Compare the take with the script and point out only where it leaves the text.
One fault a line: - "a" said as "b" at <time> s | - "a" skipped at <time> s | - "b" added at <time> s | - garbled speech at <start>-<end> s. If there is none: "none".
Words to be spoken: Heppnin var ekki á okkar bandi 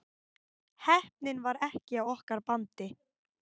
none